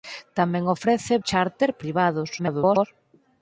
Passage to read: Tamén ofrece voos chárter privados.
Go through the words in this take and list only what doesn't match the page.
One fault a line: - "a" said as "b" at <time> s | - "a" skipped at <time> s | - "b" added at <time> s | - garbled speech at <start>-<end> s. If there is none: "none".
- "voos" skipped at 1.1 s
- garbled speech at 2.4-2.9 s